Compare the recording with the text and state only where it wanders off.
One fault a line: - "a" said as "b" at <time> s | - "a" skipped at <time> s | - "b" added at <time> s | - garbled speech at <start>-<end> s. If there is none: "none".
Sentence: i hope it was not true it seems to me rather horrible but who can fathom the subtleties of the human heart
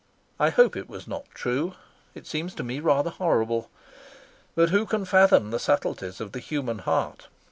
none